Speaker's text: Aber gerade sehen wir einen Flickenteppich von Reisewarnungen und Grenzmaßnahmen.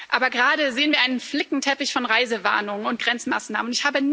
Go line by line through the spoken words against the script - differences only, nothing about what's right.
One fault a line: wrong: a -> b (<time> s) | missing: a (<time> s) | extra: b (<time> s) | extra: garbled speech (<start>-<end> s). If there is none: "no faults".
no faults